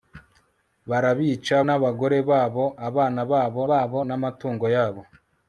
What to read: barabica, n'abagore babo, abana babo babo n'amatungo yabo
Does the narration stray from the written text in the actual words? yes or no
no